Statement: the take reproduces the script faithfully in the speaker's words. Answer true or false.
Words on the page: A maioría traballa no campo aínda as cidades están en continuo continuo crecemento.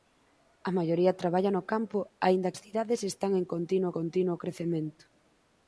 true